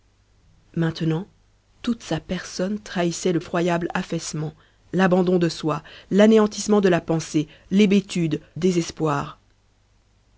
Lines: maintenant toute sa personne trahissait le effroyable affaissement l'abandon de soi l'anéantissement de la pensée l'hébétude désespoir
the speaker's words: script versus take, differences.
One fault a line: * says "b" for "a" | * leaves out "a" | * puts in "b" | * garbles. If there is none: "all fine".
all fine